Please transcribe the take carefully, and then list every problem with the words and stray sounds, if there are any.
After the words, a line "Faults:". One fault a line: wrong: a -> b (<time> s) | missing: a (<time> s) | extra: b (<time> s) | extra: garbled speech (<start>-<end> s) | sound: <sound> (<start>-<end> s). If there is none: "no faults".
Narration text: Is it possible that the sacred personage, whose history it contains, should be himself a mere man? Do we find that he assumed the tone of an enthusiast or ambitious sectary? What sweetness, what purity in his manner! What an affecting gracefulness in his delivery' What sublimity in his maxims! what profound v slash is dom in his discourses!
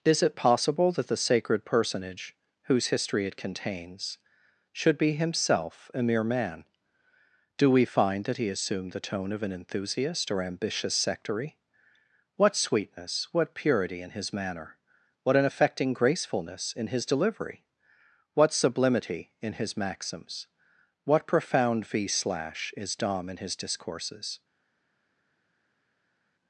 Is it possible that the sacred personage, whose history it contains, should be himself a mere man? Do we find that he assumed the tone of an enthusiast or ambitious sectary? What sweetness, what purity in his manner! What an affecting gracefulness in his delivery' What sublimity in his maxims! what profound v slash is dom in his discourses!
Faults:
no faults